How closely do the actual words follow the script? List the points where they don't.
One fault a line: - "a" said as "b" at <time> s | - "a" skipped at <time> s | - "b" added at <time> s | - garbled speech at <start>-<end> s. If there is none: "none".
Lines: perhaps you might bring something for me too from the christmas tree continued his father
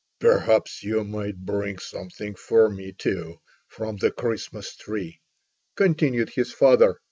none